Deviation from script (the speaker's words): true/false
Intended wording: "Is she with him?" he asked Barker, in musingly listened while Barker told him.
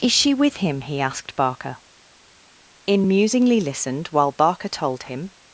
false